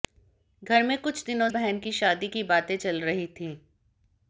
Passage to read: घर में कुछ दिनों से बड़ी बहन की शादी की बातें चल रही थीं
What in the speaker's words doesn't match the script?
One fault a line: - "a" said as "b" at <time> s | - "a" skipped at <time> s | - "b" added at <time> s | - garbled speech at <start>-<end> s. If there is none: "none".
- "से बड़ी" skipped at 1.5 s